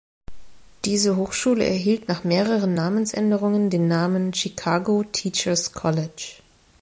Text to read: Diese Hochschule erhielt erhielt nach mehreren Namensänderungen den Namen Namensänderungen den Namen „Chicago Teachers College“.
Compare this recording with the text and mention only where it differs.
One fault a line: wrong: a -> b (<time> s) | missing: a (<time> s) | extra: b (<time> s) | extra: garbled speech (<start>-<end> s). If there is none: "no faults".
missing: erhielt (2.1 s)
missing: Namensänderungen den Namen (4.3 s)